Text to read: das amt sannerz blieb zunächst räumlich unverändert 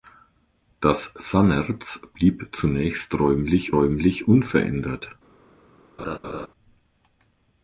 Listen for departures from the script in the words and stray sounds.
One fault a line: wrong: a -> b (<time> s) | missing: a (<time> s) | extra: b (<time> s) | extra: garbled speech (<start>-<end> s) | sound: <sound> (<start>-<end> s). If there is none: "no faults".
missing: amt (1.1 s)
extra: räumlich (3.7 s)
sound: laugh (6.0-6.5 s)